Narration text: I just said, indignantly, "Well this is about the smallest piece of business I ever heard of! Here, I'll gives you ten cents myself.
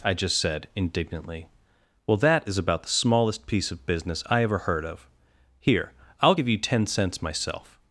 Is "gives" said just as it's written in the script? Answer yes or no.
no